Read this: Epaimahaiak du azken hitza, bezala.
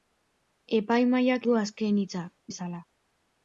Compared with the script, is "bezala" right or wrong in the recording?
right